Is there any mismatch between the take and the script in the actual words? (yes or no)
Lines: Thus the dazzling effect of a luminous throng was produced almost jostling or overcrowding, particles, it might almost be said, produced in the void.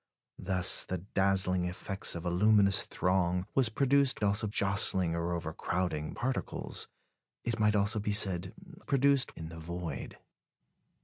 no